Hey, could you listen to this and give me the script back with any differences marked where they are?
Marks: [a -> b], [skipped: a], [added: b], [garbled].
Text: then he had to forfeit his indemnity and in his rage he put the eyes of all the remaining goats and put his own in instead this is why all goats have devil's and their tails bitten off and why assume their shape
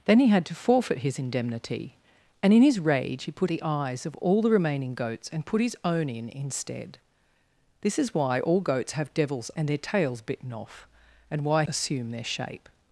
then he had to forfeit his indemnity and in his rage he put the eyes of all the remaining goats and put his own in instead this is why all goats have devil's and their tails bitten off and why assume their shape